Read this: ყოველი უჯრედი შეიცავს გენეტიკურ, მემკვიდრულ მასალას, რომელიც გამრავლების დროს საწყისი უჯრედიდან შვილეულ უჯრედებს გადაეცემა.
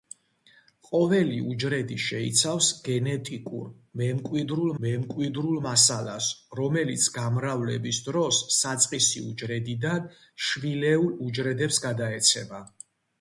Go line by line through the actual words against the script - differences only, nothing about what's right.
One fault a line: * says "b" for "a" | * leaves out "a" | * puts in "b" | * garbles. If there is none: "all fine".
* puts in "მემკვიდრულ"